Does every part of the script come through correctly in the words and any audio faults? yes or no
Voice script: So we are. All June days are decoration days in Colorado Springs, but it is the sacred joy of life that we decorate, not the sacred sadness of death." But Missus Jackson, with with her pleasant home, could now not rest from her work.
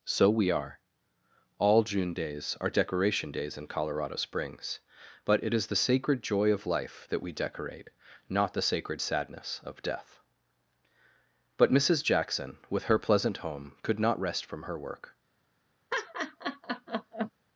no